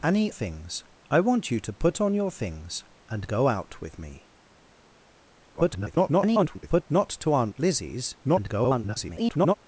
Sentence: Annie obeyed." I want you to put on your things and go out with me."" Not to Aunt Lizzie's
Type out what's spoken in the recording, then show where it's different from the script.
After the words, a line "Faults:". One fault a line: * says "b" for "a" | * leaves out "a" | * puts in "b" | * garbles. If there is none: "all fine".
Annie things." I want you to put on your things and go out with me."" [garbled] Not to Aunt Lizzie's [garbled]
Faults:
* says "things" for "obeyed"
* garbles
* garbles